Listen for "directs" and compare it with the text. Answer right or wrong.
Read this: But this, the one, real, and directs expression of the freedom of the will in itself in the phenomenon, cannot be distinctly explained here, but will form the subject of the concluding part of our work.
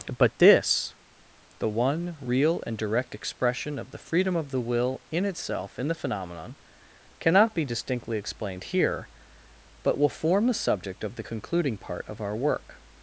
wrong